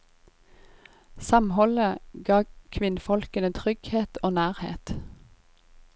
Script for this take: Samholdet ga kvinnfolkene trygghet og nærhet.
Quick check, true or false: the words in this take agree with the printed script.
true